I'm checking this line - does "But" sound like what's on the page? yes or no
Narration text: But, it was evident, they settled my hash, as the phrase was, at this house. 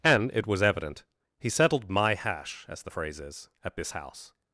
no